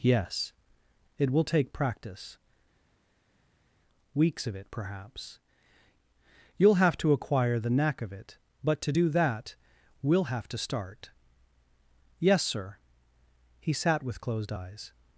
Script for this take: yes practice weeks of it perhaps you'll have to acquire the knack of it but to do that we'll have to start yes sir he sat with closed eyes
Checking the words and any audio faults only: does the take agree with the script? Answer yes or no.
no